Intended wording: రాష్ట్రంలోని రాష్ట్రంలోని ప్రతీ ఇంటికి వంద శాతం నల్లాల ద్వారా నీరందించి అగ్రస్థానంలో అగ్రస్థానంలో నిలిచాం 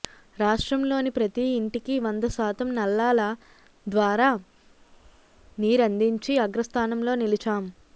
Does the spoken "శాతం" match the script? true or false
true